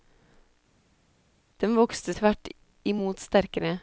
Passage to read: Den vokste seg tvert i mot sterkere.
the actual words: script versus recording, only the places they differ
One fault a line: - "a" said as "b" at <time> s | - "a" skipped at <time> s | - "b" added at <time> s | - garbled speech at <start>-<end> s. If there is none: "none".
- "seg" skipped at 2.1 s